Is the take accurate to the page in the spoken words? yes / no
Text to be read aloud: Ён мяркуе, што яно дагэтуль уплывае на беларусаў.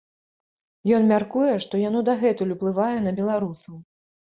yes